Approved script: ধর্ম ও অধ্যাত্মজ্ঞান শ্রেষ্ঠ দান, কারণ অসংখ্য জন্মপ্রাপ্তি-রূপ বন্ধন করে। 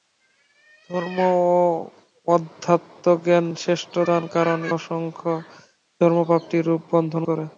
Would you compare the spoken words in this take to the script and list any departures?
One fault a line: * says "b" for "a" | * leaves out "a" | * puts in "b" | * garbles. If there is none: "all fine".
all fine